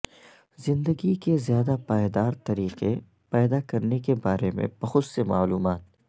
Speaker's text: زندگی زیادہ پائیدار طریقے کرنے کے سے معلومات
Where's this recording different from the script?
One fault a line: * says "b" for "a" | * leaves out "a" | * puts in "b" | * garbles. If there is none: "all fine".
* puts in "کے"
* puts in "پیدا"
* puts in "بارے میں بہت"